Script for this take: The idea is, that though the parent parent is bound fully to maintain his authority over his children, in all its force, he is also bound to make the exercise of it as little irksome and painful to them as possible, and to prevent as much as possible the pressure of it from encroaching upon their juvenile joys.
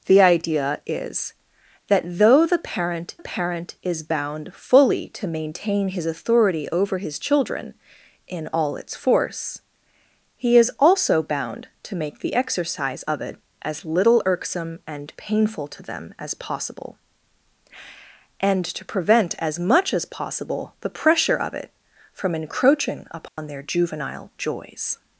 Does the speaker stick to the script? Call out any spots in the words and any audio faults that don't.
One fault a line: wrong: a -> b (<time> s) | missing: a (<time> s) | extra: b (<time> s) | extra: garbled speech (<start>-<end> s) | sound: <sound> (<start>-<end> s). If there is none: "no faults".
sound: dropout (23.3-23.4 s)